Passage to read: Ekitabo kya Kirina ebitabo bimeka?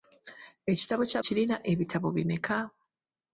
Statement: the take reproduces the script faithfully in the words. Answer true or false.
true